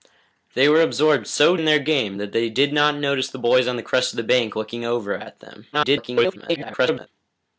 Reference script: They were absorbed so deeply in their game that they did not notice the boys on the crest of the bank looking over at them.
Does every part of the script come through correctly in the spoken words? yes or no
no